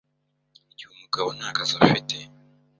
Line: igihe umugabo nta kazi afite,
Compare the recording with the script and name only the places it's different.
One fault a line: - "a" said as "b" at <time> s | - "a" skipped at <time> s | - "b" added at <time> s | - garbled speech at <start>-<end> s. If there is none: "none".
none